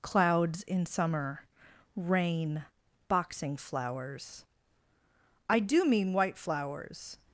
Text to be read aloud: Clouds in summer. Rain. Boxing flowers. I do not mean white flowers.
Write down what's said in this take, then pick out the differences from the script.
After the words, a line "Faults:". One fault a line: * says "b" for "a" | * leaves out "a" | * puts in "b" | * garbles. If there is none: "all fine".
Clouds in summer. Rain. Boxing flowers. I do mean white flowers.
Faults:
* leaves out "not"